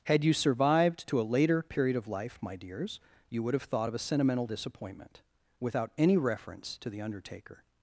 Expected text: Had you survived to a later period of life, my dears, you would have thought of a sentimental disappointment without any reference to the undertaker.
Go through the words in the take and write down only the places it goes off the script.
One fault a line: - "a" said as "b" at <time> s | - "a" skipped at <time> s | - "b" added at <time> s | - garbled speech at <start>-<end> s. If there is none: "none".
none